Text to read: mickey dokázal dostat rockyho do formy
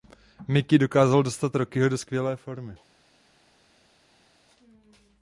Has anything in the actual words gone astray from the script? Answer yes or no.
yes